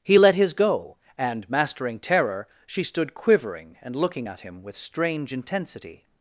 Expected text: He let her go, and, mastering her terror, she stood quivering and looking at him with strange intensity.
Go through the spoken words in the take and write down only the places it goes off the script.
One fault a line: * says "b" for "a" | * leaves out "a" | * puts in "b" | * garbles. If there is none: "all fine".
* says "his" for "her"
* leaves out "her"